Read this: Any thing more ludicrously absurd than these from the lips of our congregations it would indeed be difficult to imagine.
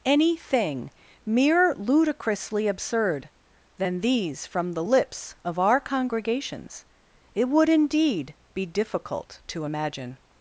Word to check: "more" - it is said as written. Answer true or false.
false